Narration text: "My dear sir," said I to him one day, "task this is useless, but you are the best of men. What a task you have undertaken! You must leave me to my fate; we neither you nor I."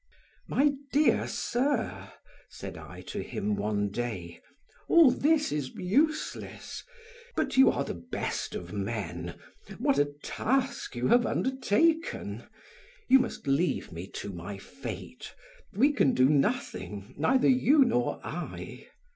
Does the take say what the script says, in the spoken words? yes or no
no